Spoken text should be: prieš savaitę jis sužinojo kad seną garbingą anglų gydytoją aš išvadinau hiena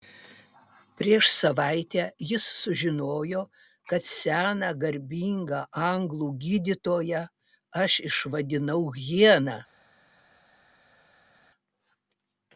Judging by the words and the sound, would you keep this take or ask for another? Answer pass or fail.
pass